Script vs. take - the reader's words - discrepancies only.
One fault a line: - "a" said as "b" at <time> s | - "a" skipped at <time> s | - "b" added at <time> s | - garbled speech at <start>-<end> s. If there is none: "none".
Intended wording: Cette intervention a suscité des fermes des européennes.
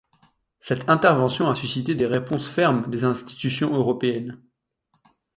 - "réponses" added at 2.1 s
- "institutions" added at 3.0 s